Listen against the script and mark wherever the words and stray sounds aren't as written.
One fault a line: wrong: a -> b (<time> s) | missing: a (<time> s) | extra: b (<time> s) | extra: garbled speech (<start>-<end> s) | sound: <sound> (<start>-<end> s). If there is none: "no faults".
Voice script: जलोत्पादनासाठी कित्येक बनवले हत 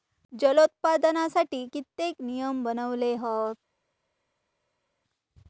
extra: नियम (2.2 s)